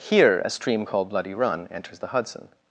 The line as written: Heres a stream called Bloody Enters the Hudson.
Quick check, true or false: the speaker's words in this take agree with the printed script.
false